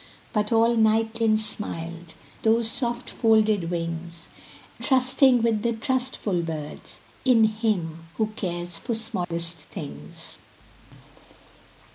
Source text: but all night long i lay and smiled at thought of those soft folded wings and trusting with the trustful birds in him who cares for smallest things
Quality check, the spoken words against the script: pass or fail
fail